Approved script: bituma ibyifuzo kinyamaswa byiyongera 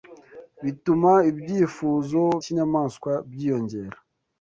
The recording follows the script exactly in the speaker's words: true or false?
true